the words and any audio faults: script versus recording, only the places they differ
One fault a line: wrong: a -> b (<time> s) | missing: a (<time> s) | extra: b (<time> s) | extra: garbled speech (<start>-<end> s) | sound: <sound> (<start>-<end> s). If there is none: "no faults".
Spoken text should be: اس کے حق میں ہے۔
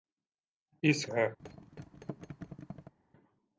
missing: کے حق میں (1.1 s)
sound: thud (1.4-2.9 s)